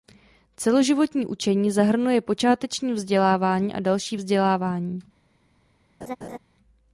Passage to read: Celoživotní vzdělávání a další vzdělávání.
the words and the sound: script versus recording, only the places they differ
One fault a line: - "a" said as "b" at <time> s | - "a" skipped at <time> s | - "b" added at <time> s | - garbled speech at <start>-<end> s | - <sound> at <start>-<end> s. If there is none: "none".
- "učení zahrnuje počáteční" added at 1.2 s
- laugh at 6.0-6.4 s